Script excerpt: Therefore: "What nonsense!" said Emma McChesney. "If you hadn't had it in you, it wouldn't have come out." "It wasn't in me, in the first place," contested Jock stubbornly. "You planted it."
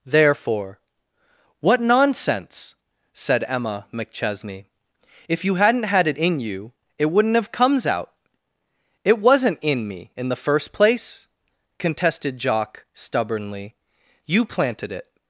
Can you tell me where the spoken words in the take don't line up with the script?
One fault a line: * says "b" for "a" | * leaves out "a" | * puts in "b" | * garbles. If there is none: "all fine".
* says "comes" for "come"